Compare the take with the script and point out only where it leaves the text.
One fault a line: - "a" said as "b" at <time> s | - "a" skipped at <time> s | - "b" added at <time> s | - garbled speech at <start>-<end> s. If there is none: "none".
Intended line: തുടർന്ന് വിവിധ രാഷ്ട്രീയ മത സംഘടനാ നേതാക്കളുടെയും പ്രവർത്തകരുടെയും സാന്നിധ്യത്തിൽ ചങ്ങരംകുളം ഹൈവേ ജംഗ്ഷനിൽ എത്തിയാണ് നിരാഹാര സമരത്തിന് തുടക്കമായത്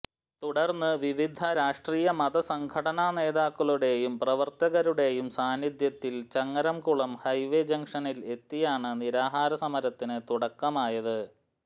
none